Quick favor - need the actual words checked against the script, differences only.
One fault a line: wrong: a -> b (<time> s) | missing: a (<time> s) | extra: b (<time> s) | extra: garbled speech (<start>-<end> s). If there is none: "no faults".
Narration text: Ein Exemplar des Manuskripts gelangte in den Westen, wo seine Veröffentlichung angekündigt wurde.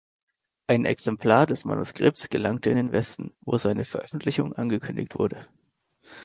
no faults